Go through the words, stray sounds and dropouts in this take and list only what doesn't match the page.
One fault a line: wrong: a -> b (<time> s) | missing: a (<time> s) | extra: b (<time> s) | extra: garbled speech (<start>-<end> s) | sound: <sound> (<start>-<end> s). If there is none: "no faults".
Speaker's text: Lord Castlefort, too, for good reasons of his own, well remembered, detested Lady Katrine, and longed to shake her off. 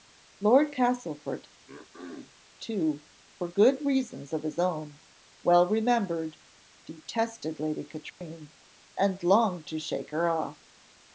sound: throat clearing (1.7-2.4 s)
sound: dropout (8.1-8.2 s)